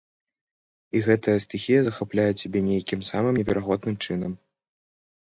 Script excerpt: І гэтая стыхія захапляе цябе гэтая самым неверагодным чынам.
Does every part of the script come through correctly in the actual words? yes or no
no